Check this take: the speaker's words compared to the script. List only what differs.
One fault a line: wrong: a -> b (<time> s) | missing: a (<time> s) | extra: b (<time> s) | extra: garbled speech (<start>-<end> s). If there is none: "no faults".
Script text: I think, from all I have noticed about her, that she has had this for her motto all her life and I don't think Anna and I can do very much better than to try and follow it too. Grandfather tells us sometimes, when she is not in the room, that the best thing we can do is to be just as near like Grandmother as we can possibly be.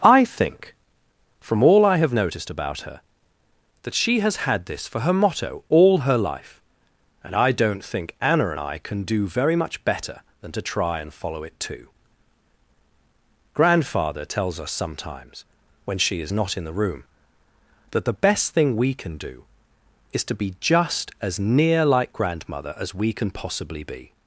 no faults